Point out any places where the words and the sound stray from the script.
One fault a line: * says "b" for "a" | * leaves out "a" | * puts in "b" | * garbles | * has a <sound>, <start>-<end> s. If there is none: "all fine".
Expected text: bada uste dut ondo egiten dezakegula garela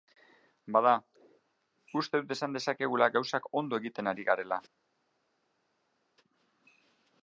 * puts in "esan dezakegula gauzak"
* says "ari" for "dezakegula"